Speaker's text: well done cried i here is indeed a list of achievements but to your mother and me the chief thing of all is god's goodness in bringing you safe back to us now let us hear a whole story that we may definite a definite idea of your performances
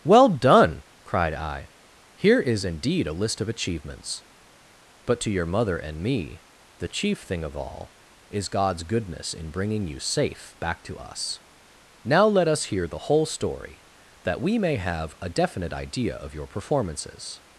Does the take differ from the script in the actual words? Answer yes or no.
yes